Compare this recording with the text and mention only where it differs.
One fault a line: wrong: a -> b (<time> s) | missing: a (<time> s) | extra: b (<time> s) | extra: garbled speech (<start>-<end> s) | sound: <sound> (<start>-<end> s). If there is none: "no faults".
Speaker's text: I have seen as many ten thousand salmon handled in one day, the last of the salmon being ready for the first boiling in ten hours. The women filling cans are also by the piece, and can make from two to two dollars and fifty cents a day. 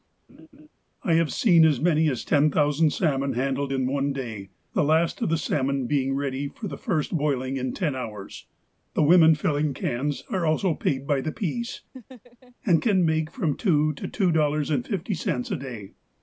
sound: laugh (0.3-0.7 s)
extra: as (2.1 s)
extra: paid (10.7 s)
sound: laugh (11.9-12.6 s)